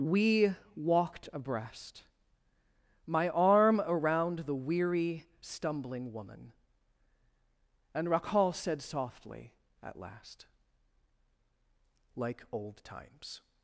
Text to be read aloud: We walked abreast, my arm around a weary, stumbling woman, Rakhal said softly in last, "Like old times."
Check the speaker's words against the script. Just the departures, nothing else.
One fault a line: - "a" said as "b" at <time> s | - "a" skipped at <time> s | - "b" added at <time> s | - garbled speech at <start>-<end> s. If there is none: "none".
- "a" said as "the" at 4.4 s
- "and" added at 7.9 s
- "in" said as "at" at 9.8 s